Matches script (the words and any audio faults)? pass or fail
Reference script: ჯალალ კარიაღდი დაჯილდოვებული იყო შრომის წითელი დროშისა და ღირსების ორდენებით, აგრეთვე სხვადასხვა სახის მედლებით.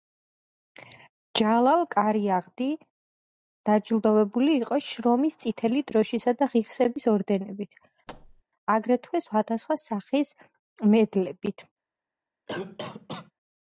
fail